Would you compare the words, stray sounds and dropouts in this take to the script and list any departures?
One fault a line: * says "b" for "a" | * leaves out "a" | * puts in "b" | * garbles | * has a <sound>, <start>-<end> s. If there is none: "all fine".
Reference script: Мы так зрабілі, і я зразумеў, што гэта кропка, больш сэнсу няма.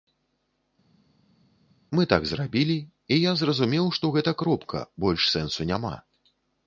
all fine